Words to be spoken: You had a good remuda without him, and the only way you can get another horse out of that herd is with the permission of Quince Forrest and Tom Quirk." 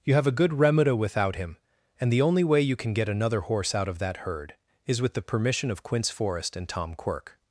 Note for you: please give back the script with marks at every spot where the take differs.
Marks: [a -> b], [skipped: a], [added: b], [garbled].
You [had -> have] a good remuda without him, and the only way you can get another horse out of that herd is with the permission of Quince Forrest and Tom Quirk."